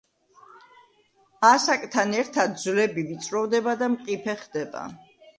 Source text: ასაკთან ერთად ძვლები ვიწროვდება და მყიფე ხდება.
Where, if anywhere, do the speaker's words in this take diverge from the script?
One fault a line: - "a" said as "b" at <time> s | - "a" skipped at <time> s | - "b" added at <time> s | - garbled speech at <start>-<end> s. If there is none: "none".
none